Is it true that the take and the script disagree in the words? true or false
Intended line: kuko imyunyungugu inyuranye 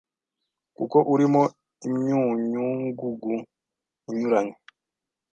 true